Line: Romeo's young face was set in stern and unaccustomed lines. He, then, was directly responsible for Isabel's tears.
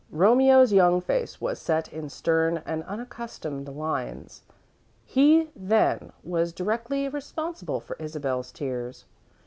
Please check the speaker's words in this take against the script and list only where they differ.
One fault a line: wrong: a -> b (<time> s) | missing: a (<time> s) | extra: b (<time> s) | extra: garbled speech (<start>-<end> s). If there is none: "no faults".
no faults